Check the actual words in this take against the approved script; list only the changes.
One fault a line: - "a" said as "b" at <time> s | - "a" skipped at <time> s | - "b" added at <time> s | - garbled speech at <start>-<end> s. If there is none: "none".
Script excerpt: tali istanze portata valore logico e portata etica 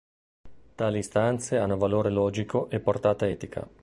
- "portata" said as "hanno" at 1.6 s